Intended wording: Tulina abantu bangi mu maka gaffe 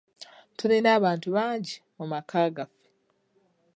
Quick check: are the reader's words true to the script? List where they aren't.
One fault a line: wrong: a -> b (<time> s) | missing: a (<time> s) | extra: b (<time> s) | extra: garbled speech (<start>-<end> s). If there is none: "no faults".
no faults